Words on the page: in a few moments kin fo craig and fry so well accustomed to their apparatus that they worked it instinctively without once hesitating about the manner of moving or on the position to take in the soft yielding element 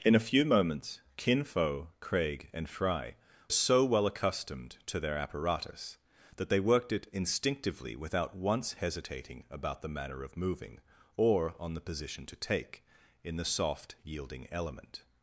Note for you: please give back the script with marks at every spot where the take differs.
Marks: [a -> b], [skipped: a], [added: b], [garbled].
in a few moments kin fo craig and fry so well accustomed to their apparatus that they worked it instinctively without once hesitating about the manner of moving or on the position to take in the soft yielding element